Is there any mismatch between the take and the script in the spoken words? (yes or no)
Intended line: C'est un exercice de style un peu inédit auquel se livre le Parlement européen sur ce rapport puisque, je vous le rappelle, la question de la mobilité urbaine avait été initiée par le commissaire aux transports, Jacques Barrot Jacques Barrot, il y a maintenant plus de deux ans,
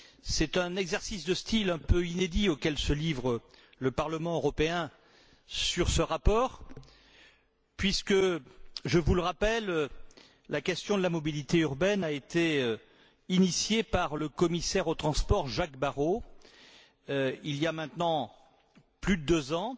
yes